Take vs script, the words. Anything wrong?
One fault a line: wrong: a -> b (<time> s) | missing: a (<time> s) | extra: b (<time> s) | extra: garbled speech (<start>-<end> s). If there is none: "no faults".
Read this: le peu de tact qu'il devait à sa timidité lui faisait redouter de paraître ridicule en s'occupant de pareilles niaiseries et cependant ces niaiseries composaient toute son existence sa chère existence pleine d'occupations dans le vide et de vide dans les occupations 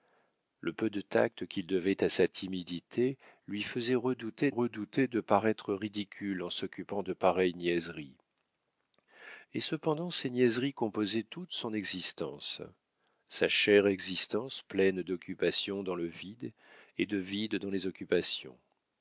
extra: redouter (4.5 s)